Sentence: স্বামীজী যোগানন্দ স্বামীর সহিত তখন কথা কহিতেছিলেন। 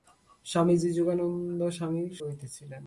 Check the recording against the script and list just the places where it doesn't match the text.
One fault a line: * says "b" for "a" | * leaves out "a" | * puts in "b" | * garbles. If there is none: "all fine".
* leaves out "সহিত তখন কথা"